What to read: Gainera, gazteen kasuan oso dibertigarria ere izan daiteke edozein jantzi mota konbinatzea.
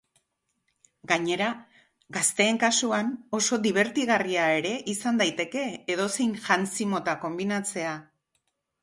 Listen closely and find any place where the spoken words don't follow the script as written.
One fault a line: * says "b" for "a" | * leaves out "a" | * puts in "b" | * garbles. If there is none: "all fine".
all fine